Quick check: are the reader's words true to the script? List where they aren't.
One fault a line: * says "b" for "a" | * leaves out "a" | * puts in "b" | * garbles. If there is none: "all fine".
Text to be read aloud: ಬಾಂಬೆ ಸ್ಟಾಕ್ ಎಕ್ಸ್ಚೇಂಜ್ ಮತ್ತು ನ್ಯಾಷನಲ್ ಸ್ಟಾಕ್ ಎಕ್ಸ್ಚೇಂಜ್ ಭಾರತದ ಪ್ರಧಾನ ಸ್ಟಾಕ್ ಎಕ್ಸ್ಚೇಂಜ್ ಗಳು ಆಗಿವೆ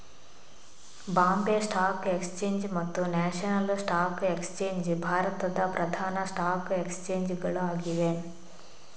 all fine